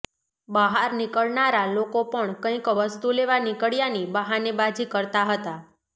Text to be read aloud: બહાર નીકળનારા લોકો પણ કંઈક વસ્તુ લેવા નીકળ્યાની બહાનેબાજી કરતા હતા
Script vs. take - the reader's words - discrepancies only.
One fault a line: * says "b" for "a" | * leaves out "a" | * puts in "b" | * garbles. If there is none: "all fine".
all fine